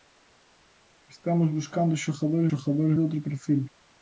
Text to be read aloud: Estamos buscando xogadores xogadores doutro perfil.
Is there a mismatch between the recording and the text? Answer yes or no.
no